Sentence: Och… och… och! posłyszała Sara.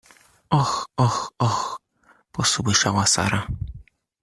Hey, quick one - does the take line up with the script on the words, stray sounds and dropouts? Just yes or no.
yes